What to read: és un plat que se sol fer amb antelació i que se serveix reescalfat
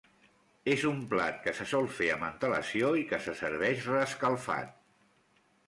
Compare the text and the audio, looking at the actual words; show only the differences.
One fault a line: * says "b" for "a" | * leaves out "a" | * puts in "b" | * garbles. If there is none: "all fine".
all fine